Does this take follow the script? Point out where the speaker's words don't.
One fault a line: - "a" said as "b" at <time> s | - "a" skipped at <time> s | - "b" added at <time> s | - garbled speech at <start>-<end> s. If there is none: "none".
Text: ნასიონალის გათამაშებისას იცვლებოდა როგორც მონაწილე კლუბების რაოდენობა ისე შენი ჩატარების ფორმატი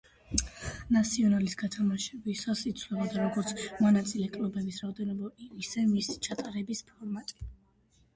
- "შენი" said as "მისი" at 5.9 s